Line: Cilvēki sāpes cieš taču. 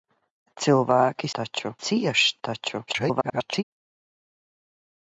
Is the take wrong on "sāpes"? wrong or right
wrong